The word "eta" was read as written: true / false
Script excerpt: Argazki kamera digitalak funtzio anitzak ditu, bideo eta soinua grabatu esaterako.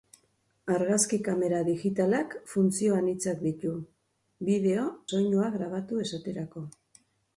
false